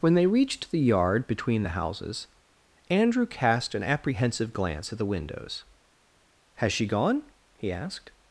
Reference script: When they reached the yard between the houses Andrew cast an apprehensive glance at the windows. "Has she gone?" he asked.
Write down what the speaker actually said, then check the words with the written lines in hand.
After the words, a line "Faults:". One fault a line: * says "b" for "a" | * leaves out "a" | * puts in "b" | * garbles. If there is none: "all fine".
When they reached the yard between the houses Andrew cast an apprehensive glance at the windows. "Has she gone?" he asked.
Faults:
all fine